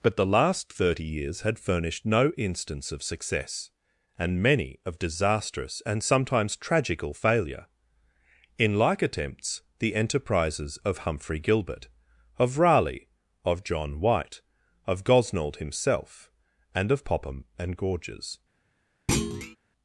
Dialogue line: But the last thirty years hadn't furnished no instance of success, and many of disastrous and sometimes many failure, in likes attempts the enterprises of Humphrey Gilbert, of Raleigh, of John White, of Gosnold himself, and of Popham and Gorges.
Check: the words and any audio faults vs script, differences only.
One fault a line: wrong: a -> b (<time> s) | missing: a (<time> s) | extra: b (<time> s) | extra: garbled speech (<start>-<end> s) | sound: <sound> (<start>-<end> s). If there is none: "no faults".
wrong: hadn't -> had (1.4 s)
wrong: many -> tragical (6.6 s)
wrong: likes -> like (8.8 s)
sound: thud (19.1-19.6 s)